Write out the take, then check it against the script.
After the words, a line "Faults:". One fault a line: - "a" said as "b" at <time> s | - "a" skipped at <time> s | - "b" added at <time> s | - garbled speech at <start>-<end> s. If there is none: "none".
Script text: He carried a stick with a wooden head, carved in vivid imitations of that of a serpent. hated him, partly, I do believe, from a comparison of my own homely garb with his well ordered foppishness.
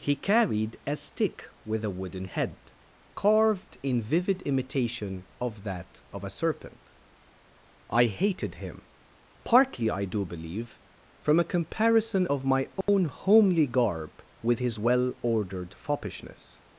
He carried a stick with a wooden head, carved in vivid imitation of that of a serpent. I hated him, partly, I do believe, from a comparison of my own homely garb with his well ordered foppishness.
Faults:
- "imitations" said as "imitation" at 4.4 s
- "I" added at 7.9 s